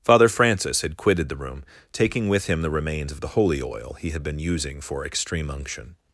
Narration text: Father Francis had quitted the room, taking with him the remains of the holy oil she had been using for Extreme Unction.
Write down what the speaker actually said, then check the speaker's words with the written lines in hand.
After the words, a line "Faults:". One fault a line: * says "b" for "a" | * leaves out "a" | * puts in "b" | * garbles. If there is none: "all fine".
Father Francis had quitted the room, taking with him the remains of the holy oil he had been using for Extreme Unction.
Faults:
* says "he" for "she"